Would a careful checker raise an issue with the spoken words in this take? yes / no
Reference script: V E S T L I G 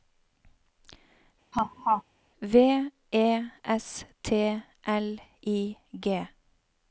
no